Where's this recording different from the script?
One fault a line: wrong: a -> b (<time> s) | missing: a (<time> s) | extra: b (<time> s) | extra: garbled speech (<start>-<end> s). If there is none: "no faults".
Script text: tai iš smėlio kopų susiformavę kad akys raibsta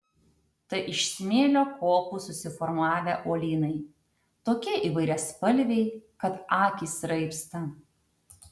extra: uolynai tokie įvairiaspalviai (3.3 s)